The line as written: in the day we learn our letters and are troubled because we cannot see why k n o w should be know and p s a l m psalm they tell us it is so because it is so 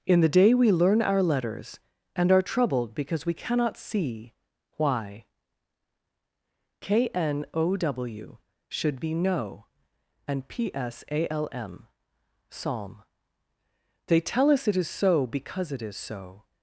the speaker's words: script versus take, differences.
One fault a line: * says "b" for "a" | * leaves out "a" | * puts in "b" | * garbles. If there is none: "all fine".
all fine